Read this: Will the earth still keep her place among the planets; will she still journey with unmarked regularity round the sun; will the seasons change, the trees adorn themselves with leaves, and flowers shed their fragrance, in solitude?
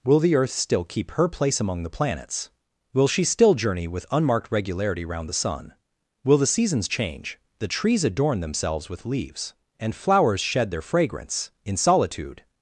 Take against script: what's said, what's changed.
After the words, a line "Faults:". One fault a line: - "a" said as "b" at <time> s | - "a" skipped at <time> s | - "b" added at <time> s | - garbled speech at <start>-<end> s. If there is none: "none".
Will the earth still keep her place among the planets; will she still journey with unmarked regularity round the sun; will the seasons change, the trees adorn themselves with leaves, and flowers shed their fragrance, in solitude?
Faults:
none